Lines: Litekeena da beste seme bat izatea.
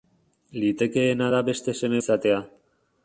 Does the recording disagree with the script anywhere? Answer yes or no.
yes